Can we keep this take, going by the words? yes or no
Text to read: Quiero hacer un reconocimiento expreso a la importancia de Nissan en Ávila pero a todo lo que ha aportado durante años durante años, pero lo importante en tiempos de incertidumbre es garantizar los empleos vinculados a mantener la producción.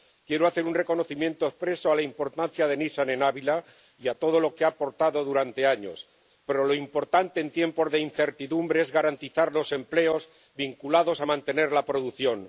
no